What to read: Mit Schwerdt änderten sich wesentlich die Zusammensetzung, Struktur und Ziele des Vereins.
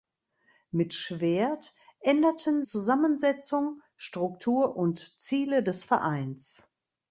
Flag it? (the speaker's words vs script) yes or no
yes